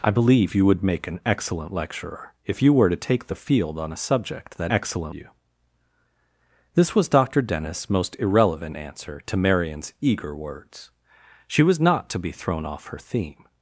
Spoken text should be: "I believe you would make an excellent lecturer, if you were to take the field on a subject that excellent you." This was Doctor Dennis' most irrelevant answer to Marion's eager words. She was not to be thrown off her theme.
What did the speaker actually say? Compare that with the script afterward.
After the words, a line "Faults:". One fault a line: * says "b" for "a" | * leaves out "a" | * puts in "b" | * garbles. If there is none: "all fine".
"I believe you would make an excellent lecturer, if you were to take the field on a subject that excellent you." This was Doctor Dennis' most irrelevant answer to Marion's eager words. She was not to be thrown off her theme.
Faults:
all fine